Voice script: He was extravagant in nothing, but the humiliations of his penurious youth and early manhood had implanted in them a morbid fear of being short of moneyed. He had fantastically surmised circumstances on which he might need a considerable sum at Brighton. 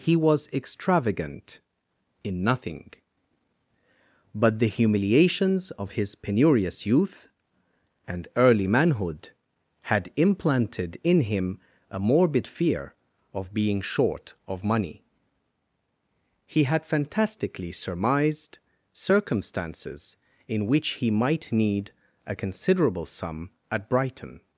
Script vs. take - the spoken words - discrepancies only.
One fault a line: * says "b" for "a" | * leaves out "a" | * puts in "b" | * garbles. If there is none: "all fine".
* says "him" for "them"
* says "money" for "moneyed"
* says "in" for "on"